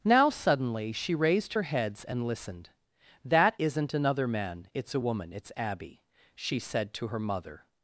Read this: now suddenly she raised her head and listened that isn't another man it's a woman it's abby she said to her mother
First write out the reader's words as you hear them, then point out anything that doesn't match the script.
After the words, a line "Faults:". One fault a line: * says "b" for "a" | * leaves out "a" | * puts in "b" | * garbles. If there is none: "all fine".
now suddenly she raised her heads and listened that isn't another man it's a woman it's abby she said to her mother
Faults:
* says "heads" for "head"